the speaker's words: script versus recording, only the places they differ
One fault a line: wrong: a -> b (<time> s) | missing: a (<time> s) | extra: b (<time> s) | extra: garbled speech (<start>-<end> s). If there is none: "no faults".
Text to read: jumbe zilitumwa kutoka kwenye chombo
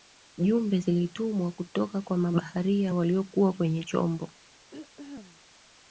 extra: kwa mabaharia waliokuwa (2.0 s)